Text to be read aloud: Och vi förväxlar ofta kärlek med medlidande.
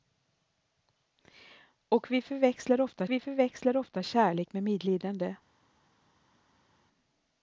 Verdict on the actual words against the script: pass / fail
fail